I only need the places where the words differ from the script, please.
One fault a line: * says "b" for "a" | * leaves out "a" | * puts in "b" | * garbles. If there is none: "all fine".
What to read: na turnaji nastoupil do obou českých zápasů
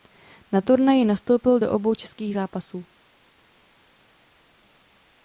all fine